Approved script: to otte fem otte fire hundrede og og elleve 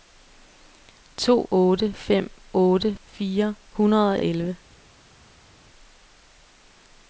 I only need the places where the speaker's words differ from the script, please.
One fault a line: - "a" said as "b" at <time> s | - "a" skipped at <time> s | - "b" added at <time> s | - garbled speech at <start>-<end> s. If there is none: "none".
none